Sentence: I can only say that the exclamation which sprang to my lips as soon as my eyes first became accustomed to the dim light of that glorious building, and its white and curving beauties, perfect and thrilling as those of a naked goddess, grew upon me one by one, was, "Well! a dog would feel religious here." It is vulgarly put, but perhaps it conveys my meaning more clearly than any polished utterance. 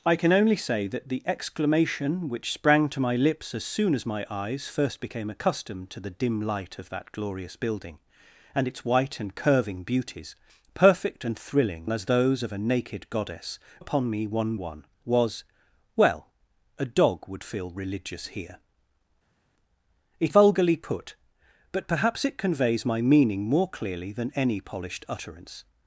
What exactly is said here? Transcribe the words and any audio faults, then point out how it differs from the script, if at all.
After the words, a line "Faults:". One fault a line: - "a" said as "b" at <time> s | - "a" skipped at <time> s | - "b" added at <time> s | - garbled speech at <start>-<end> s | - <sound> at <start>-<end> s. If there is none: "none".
I can only say that the exclamation which sprang to my lips as soon as my eyes first became accustomed to the dim light of that glorious building, and its white and curving beauties, perfect and thrilling as those of a naked goddess, upon me one one, was, "Well! a dog would feel religious here." It vulgarly put, but perhaps it conveys my meaning more clearly than any polished utterance.
Faults:
- "grew" skipped at 13.6 s
- "by" skipped at 14.6 s
- "is" skipped at 20.3 s